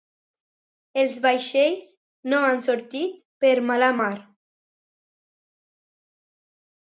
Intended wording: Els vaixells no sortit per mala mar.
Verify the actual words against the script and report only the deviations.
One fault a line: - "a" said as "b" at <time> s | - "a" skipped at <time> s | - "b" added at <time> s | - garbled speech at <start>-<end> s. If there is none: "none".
- "han" added at 2.5 s